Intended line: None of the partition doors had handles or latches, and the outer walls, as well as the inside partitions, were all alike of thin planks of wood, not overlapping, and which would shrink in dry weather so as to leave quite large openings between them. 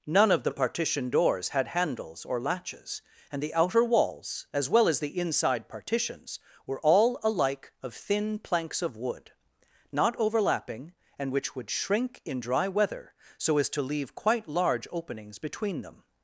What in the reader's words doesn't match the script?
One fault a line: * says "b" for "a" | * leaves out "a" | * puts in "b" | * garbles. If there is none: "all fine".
all fine